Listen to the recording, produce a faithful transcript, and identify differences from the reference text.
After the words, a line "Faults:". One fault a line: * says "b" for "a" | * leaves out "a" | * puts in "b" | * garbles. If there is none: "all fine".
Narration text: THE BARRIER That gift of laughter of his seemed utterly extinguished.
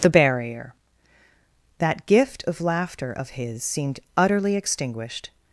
THE BARRIER That gift of laughter of his seemed utterly extinguished.
Faults:
all fine